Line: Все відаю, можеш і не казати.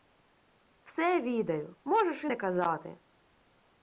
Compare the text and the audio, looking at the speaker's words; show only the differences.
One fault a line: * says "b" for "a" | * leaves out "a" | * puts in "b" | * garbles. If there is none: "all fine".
all fine